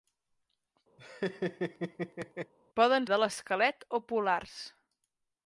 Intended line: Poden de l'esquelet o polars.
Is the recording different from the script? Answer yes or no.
no